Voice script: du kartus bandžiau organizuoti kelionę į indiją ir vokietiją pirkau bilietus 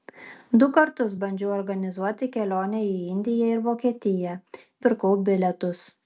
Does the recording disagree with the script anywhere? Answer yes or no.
no